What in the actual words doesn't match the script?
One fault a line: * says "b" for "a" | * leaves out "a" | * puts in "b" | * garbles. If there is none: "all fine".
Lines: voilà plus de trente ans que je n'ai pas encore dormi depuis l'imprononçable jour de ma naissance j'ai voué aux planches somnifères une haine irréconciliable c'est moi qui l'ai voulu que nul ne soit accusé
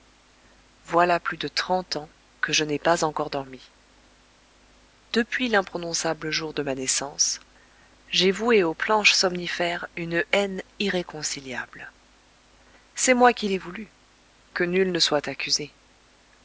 all fine